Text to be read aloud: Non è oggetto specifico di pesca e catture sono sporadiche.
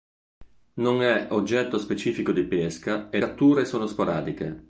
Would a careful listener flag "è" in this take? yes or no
no